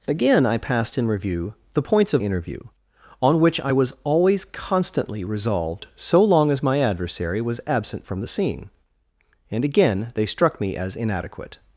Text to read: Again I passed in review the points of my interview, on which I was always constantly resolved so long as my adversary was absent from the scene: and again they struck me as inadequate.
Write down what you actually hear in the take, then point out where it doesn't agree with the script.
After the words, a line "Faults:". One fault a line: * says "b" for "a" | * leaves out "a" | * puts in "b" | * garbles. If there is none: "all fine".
Again I passed in review the points of interview, on which I was always constantly resolved so long as my adversary was absent from the scene: and again they struck me as inadequate.
Faults:
* leaves out "my"